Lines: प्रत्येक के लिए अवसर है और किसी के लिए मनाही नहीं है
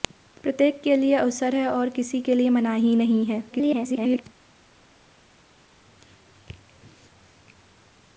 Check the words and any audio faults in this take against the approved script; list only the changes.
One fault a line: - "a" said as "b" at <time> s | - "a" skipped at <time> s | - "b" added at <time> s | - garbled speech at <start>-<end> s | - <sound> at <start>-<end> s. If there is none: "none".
- garbled speech at 3.5-4.2 s